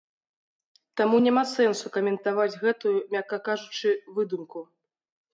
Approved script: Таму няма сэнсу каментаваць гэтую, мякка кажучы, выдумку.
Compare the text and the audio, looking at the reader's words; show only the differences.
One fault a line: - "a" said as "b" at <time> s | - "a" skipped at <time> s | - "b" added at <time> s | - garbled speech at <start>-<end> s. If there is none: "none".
none